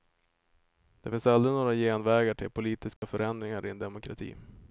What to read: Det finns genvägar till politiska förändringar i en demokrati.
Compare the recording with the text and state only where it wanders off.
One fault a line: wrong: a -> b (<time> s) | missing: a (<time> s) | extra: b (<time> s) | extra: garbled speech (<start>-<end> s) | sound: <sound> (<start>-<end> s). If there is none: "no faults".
extra: aldrig några (1.3 s)
sound: dropout (3.0-3.0 s)